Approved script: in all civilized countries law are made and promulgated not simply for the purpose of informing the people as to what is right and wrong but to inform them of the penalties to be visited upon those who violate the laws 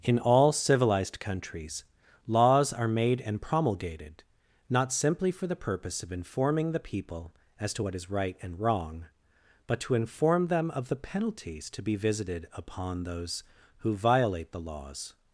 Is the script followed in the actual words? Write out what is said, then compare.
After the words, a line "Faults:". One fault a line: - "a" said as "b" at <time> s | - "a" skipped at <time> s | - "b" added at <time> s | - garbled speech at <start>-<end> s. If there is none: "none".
in all civilized countries laws are made and promulgated not simply for the purpose of informing the people as to what is right and wrong but to inform them of the penalties to be visited upon those who violate the laws
Faults:
- "law" said as "laws" at 2.2 s